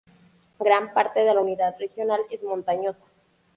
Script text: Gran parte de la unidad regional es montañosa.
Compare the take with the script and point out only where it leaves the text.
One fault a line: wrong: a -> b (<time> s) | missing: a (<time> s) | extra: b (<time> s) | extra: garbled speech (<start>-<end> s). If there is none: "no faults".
no faults